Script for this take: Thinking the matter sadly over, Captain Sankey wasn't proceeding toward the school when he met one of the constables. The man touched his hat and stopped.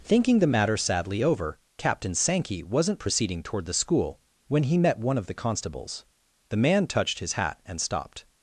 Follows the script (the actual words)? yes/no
yes